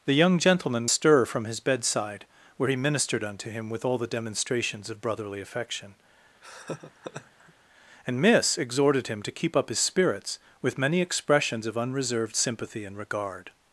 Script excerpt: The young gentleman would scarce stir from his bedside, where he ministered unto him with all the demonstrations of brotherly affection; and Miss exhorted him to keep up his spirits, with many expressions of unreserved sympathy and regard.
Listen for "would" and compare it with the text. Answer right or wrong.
wrong